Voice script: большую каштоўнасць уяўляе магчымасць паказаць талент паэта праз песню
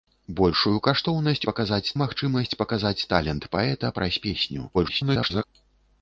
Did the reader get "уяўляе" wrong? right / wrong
wrong